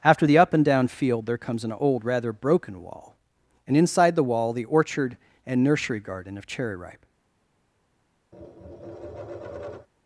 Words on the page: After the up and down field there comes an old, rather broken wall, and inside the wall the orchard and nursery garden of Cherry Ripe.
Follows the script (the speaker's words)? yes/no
yes